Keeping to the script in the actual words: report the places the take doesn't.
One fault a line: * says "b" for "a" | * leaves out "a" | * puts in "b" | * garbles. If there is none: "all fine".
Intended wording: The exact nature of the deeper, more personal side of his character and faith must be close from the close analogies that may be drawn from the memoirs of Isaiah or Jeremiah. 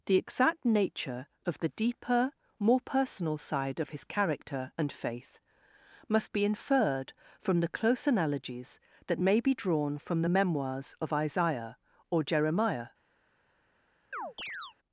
* says "inferred" for "close"